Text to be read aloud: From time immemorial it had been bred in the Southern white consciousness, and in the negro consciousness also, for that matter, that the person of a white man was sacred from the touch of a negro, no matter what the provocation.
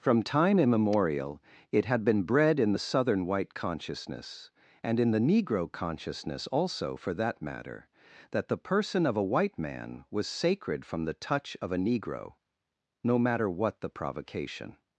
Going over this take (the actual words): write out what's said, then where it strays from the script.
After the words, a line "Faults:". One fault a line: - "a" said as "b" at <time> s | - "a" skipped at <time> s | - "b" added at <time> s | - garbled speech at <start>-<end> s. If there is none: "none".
From time immemorial it had been bred in the Southern white consciousness, and in the negro consciousness also, for that matter, that the person of a white man was sacred from the touch of a negro, no matter what the provocation.
Faults:
none